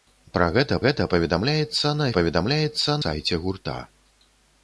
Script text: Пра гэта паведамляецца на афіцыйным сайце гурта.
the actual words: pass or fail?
fail